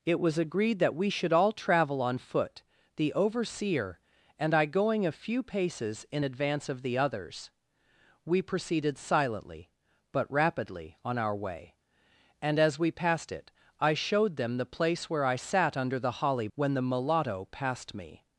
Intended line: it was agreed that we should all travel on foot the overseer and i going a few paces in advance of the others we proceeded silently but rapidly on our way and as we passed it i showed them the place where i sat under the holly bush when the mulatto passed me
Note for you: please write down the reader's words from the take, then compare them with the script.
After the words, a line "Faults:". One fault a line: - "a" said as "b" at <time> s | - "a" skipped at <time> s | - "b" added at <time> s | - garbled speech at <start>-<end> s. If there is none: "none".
it was agreed that we should all travel on foot the overseer and i going a few paces in advance of the others we proceeded silently but rapidly on our way and as we passed it i showed them the place where i sat under the holly when the mulatto passed me
Faults:
- "bush" skipped at 16.5 s